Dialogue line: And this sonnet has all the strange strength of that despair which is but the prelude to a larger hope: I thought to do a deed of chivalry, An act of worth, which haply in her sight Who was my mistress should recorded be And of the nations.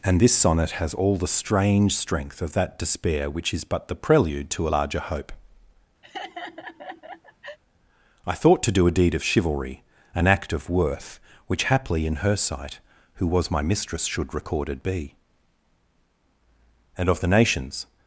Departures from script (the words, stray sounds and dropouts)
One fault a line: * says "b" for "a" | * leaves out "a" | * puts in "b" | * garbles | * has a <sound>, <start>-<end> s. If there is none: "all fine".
* has a laugh, 6.0-7.6 s